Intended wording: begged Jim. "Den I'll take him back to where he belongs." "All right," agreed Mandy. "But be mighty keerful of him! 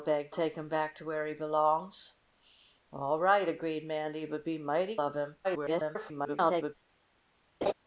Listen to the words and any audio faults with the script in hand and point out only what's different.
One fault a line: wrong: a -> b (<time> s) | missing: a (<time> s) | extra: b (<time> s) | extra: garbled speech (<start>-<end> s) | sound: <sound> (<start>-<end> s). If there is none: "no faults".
missing: Jim Den I'll (0.3 s)
missing: keerful (5.0 s)
extra: garbled speech (5.4-6.8 s)
sound: laugh (7.6-7.7 s)